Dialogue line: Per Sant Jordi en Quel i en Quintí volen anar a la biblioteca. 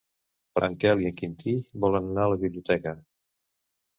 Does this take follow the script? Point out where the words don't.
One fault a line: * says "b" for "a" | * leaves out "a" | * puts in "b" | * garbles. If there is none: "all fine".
* leaves out "Sant Jordi"